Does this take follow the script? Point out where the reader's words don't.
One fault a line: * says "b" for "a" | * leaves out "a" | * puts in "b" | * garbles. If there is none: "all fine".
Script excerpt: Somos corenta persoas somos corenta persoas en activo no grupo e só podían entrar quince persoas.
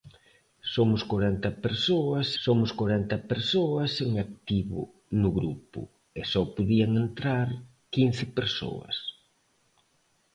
all fine